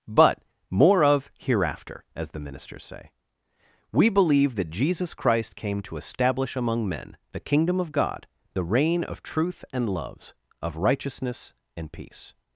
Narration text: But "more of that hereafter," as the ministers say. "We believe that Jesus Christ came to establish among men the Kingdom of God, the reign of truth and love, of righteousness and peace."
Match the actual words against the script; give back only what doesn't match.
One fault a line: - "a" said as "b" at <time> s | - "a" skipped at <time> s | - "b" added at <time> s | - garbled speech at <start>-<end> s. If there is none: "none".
- "that" skipped at 1.3 s
- "love" said as "loves" at 9.9 s